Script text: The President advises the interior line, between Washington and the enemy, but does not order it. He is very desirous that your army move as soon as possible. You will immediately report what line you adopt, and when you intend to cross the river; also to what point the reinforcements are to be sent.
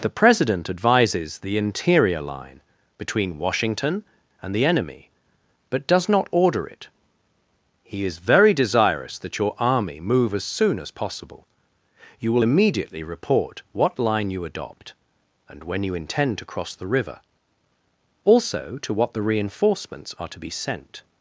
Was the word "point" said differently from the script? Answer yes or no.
yes